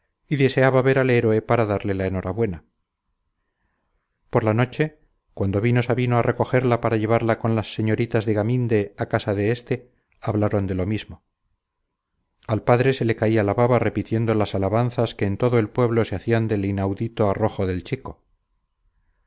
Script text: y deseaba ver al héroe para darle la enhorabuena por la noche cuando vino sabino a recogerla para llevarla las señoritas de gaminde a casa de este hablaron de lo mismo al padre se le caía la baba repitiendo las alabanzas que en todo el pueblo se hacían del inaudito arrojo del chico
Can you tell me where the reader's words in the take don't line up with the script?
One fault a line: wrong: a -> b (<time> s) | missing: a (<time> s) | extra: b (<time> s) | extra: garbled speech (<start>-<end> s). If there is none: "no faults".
extra: con (7.4 s)